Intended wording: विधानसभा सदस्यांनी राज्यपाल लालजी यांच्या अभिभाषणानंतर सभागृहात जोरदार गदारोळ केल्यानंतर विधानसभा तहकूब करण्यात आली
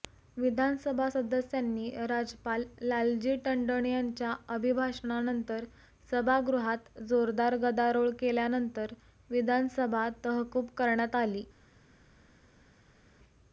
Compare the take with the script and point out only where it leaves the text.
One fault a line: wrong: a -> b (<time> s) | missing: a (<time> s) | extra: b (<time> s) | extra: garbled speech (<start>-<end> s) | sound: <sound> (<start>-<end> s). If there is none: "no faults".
extra: टंडन (3.4 s)